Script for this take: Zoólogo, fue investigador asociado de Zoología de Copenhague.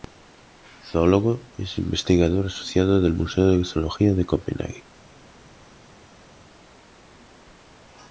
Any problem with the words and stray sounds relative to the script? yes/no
yes